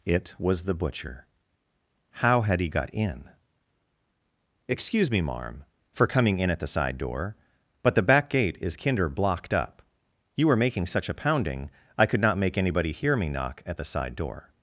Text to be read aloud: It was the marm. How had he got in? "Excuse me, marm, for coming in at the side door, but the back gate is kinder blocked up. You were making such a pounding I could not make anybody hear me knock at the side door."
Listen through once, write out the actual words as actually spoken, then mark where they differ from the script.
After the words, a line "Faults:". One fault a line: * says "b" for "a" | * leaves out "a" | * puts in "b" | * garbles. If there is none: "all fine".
It was the butcher. How had he got in? "Excuse me, marm, for coming in at the side door, but the back gate is kinder blocked up. You were making such a pounding I could not make anybody hear me knock at the side door."
Faults:
* says "butcher" for "marm"